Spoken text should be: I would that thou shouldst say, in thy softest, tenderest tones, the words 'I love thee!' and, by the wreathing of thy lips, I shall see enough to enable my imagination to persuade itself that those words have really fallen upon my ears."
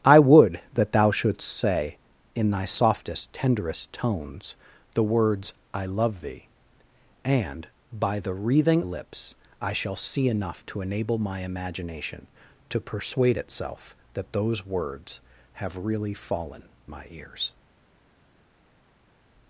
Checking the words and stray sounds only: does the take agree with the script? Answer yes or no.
no